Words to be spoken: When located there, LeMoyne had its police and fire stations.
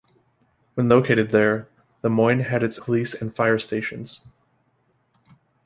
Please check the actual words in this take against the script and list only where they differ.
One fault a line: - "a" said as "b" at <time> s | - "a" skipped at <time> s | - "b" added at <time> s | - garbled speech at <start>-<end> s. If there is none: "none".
none